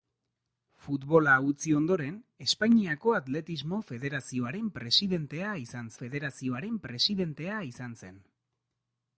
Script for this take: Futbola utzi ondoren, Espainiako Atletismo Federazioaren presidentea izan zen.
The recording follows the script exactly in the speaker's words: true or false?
false